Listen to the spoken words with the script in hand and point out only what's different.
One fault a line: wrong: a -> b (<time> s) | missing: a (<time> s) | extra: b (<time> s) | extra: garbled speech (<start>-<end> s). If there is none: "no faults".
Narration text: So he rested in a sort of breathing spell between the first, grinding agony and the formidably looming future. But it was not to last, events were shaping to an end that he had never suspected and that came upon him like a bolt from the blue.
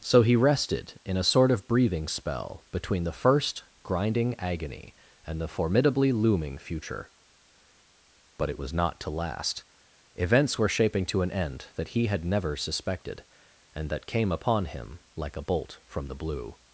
no faults